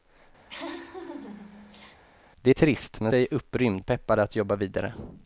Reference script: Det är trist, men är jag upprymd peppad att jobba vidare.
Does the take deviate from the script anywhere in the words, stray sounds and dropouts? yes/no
yes